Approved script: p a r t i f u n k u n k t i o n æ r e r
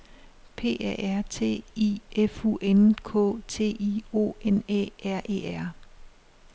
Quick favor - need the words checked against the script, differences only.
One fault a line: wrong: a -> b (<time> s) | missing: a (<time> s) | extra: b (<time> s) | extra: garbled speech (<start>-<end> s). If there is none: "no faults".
missing: u n k (3.4 s)